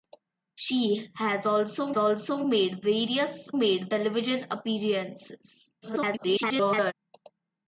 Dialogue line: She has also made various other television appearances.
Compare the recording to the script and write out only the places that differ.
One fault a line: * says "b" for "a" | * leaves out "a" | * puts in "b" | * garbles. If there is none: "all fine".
* puts in "also"
* says "made" for "other"
* garbles